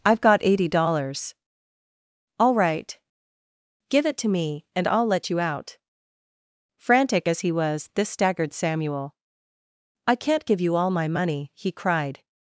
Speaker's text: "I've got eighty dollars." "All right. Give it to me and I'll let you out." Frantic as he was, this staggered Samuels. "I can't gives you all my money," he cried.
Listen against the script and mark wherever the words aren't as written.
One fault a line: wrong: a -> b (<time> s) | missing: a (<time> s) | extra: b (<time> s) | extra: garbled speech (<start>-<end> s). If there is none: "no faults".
wrong: Samuels -> Samuel (8.5 s)
wrong: gives -> give (10.5 s)